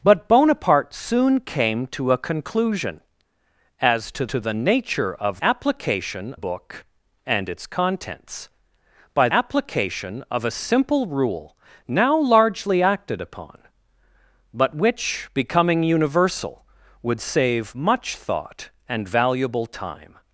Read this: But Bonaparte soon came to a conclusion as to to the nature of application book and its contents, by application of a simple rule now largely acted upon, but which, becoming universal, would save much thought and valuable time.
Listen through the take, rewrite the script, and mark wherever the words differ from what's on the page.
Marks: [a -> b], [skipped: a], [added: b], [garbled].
But Bonaparte soon came to a conclusion as to to the nature of application book and its contents, by application of a simple rule now largely acted upon, but which, becoming universal, would save much thought and valuable time.